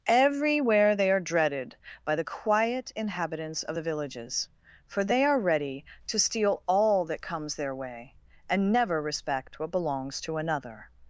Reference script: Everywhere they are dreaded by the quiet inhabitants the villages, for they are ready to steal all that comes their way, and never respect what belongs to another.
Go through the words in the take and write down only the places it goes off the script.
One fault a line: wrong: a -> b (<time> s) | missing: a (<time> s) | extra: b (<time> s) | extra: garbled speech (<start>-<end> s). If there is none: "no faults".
extra: of (3.6 s)